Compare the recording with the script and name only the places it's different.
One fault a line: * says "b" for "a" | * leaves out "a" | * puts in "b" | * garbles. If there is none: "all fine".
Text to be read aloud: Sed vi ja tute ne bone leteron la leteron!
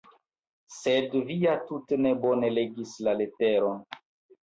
* says "legis" for "leteron"